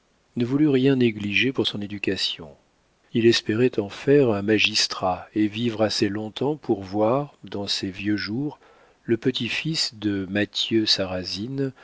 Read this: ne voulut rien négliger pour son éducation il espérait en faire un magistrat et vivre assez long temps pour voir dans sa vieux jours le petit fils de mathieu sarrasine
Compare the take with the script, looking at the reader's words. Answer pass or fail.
fail